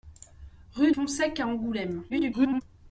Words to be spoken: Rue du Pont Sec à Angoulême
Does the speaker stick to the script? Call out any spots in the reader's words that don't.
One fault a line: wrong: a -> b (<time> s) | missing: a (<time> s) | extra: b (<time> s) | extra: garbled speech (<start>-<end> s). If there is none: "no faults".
missing: du (0.9 s)
extra: garbled speech (2.1-2.6 s)